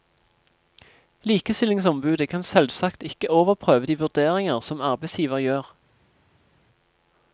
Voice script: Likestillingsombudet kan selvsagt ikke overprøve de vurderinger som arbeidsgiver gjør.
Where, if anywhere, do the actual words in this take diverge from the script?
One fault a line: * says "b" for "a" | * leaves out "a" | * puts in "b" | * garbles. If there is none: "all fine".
all fine